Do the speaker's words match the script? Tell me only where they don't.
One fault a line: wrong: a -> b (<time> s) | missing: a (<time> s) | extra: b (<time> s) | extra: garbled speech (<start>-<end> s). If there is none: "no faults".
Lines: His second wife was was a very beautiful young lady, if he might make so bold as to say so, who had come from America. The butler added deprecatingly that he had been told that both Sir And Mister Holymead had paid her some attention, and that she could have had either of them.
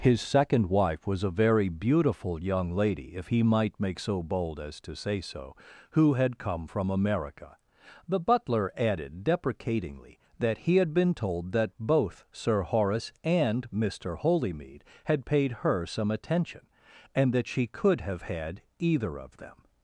missing: was (1.2 s)
extra: Horace (12.6 s)